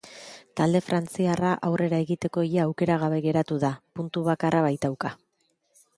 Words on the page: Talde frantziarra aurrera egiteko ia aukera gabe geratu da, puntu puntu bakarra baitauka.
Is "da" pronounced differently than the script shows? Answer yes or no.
no